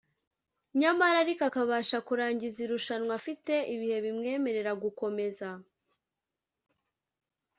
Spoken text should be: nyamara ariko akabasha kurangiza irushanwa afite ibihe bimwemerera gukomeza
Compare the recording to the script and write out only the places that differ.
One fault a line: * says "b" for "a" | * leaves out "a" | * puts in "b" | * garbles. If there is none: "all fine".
all fine